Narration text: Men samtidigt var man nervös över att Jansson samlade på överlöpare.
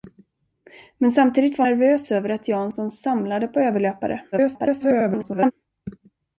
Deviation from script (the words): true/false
true